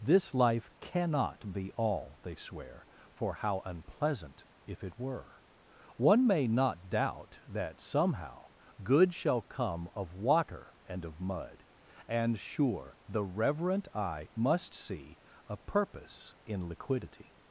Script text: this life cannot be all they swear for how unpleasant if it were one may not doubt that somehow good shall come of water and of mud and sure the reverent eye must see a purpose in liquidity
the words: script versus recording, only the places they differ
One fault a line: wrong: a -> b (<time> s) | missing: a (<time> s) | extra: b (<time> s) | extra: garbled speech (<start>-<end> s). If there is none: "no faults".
no faults